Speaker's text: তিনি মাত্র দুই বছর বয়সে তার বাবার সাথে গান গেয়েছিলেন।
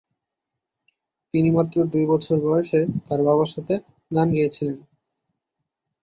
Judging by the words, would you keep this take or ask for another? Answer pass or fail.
pass